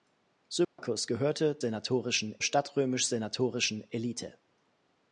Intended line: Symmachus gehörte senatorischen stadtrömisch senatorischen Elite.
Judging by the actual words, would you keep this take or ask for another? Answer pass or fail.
pass